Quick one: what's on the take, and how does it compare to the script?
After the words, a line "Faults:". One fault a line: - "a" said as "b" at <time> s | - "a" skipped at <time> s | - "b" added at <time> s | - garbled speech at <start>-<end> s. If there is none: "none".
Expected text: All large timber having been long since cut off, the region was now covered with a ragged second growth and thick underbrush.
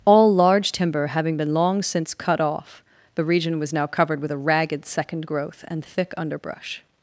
All large timber having been long since cut off, the region was now covered with a ragged second growth and thick underbrush.
Faults:
none